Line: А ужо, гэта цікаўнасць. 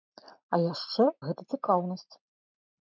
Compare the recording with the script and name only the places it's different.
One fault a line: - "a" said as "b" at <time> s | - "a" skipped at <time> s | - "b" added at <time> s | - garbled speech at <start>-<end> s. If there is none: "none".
- "ужо" said as "яшчэ" at 0.7 s